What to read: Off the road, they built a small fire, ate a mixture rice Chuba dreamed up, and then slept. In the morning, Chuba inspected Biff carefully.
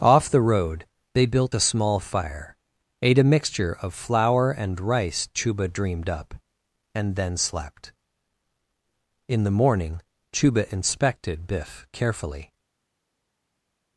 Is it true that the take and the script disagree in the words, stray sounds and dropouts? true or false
true